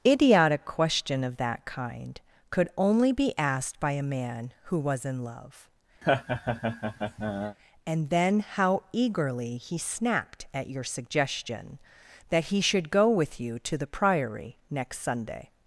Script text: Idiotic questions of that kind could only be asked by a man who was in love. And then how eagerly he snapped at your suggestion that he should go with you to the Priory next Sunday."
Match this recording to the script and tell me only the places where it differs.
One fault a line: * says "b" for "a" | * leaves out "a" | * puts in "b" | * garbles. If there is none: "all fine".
* says "question" for "questions"